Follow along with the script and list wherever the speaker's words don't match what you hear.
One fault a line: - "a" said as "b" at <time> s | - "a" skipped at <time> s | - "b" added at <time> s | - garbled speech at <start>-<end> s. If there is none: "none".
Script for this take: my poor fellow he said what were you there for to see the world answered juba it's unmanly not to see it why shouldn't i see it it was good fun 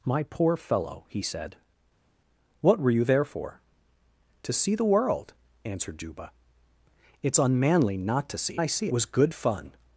- "it why shouldn't" skipped at 8.6 s
- "it it" skipped at 8.9 s